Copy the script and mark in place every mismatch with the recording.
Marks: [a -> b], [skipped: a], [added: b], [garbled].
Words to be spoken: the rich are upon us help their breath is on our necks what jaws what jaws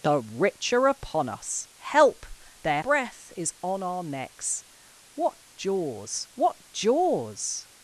the rich are upon us help their breath is on our necks what jaws what jaws